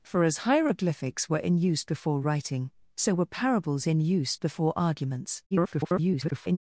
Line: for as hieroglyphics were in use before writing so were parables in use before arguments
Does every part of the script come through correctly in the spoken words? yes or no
no